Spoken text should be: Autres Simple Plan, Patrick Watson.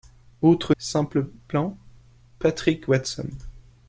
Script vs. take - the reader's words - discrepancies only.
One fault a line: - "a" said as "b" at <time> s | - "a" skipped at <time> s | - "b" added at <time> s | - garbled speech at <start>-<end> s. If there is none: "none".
none